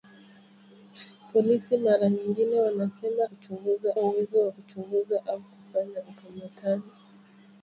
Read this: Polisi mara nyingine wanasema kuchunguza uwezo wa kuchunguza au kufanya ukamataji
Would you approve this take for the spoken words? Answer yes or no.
yes